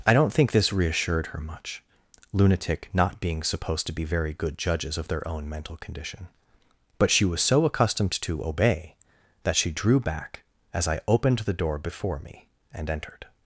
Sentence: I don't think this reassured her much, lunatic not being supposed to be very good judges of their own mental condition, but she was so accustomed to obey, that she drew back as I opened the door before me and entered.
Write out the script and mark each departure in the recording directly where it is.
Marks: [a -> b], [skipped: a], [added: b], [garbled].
I don't think this reassured her much, lunatic not being supposed to be very good judges of their own mental condition, but she was so accustomed to obey, that she drew back as I opened the door before me and entered.